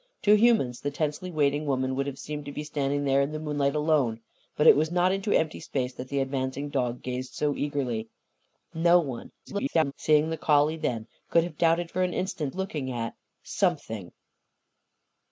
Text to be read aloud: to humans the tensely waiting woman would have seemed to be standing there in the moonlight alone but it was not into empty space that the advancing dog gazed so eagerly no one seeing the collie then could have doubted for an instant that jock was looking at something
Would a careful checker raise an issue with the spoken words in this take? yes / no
yes